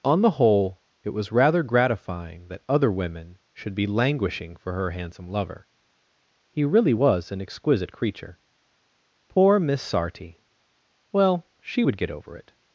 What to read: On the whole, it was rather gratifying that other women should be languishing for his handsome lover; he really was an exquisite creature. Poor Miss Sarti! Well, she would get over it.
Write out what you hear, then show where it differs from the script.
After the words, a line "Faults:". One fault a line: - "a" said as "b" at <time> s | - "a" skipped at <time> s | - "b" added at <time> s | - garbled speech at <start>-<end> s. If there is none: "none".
On the whole, it was rather gratifying that other women should be languishing for her handsome lover; he really was an exquisite creature. Poor Miss Sarti! Well, she would get over it.
Faults:
- "his" said as "her" at 4.7 s